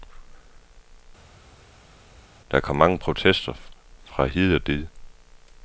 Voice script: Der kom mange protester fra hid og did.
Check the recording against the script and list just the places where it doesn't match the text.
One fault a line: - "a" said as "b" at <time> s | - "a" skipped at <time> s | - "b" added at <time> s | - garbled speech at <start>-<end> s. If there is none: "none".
none